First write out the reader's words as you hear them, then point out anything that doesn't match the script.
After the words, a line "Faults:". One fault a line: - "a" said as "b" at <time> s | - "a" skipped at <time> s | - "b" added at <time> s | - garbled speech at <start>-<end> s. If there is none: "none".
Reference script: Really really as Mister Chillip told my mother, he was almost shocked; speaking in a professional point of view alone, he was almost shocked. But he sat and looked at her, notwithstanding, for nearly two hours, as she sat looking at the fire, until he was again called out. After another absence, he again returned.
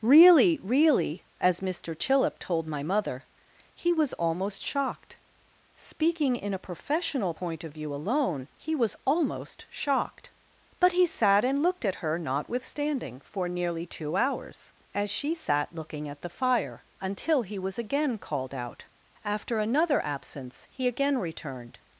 Really really as Mister Chillip told my mother, he was almost shocked; speaking in a professional point of view alone, he was almost shocked. But he sat and looked at her, notwithstanding, for nearly two hours, as she sat looking at the fire, until he was again called out. After another absence, he again returned.
Faults:
none